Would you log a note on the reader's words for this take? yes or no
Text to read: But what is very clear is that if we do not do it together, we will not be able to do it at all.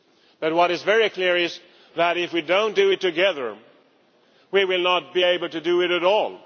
no